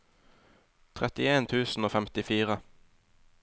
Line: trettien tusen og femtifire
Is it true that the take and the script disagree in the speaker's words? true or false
false